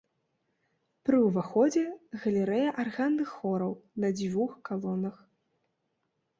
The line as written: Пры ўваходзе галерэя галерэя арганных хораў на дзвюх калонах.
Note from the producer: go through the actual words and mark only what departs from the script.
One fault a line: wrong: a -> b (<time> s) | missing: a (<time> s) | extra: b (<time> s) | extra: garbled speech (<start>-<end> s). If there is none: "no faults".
missing: галерэя (2.7 s)